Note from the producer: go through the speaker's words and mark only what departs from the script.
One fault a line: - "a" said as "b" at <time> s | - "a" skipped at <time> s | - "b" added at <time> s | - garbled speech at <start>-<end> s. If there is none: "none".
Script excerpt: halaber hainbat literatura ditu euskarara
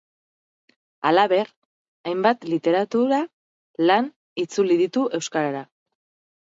- "lan itzuli" added at 3.9 s